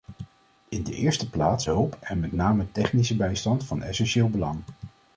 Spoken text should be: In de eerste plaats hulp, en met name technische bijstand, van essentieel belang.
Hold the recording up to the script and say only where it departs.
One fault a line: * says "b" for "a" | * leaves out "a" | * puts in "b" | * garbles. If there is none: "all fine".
all fine